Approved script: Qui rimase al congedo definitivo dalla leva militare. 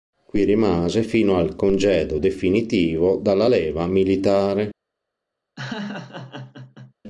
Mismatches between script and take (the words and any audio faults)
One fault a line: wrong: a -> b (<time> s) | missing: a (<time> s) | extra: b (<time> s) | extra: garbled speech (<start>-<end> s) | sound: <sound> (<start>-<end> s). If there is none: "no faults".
extra: fino (1.0 s)
sound: laugh (5.6-6.9 s)